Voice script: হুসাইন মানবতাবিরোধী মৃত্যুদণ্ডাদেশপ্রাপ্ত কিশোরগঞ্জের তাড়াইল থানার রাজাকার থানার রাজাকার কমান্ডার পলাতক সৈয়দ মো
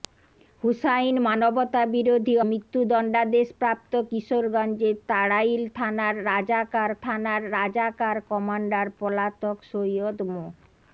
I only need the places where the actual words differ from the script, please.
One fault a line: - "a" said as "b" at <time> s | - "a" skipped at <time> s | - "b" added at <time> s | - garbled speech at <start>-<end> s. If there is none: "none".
none